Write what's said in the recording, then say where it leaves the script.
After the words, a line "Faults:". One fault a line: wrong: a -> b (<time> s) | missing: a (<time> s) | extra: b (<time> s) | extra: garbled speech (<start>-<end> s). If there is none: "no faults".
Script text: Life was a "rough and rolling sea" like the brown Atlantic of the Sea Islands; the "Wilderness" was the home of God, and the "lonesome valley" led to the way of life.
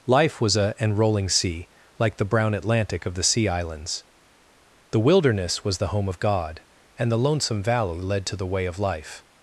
Life was a "and rolling sea" like the brown Atlantic of the Sea Islands; the "Wilderness" was the home of God, and the "lonesome valley" led to the way of life.
Faults:
missing: rough (0.7 s)